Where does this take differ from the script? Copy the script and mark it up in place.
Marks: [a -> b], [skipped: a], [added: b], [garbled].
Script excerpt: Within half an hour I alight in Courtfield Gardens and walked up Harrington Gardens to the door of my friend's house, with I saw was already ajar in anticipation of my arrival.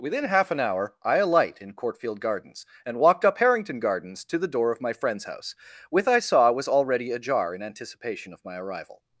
Within half an hour I alight in Courtfield Gardens and walked up Harrington Gardens to the door of my friend's house, with I saw was already ajar in anticipation of my arrival.